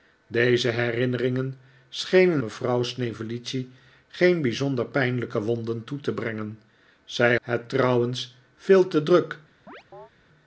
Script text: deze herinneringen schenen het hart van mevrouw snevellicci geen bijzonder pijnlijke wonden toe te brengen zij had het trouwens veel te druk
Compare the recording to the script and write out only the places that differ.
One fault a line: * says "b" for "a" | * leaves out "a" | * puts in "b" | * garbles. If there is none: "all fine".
* leaves out "het hart van"
* leaves out "had"